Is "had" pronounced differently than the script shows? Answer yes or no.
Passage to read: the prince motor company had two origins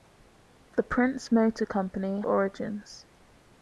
yes